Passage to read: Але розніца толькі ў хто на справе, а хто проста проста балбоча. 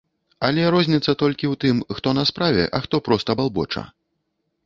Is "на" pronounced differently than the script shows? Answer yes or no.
no